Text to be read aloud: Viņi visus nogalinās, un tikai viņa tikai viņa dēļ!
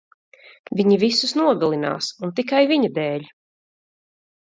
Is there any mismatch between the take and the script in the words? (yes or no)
yes